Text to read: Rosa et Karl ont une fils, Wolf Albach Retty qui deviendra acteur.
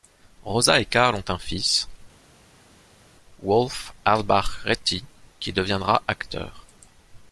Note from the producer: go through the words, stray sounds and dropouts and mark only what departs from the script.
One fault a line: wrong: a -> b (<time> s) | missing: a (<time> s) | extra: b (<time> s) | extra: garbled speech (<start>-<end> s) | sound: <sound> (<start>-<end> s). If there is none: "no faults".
wrong: une -> un (1.3 s)